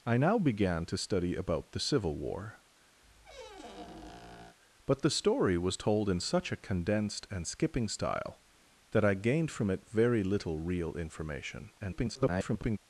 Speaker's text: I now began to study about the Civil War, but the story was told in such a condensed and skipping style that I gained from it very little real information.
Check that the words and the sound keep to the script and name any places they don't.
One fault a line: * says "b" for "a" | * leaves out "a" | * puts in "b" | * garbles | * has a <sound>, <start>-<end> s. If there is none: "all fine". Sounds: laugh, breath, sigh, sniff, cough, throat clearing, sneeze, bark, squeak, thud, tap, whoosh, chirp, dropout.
* has a squeak, 3.0-4.6 s
* garbles